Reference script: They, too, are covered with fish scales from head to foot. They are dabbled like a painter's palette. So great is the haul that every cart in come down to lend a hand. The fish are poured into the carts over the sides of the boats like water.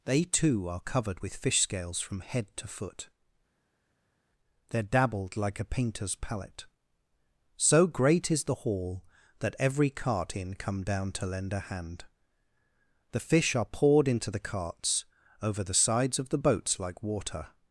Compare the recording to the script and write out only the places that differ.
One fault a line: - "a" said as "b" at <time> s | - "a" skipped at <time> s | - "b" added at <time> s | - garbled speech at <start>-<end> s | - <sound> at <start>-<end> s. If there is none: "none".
none